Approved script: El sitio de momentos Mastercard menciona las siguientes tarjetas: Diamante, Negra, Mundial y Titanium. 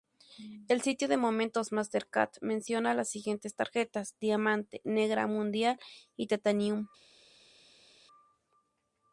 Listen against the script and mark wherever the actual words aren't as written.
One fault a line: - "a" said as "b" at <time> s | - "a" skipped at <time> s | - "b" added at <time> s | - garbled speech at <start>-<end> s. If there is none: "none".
none